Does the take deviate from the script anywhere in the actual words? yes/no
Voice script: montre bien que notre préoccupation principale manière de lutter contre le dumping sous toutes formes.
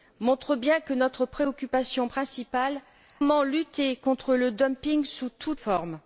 no